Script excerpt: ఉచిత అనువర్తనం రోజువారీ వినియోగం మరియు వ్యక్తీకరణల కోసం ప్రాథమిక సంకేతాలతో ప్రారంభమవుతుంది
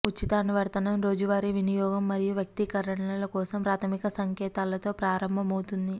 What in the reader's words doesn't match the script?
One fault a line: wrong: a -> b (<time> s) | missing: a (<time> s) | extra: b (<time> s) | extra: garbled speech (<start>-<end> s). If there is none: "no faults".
no faults